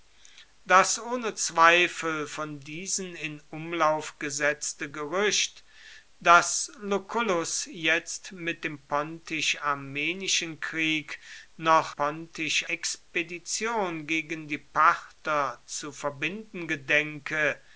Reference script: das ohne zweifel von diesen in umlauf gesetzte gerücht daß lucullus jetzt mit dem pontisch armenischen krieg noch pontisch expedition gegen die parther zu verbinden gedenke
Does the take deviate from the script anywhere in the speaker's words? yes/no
no